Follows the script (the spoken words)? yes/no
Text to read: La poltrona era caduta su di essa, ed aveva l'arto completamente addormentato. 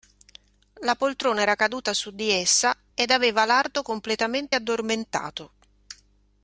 yes